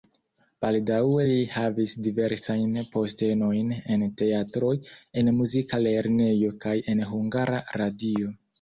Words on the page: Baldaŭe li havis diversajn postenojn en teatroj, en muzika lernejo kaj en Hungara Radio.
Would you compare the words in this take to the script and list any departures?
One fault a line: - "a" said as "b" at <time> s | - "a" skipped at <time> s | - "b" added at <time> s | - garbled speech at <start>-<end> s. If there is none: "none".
none